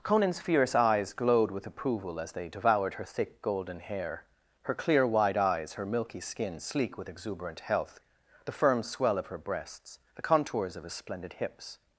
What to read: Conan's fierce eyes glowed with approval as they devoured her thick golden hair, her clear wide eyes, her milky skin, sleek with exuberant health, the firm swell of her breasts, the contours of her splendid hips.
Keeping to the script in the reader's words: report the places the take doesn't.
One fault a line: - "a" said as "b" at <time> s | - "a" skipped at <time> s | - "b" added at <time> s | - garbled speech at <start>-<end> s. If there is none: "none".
- "her" said as "his" at 10.8 s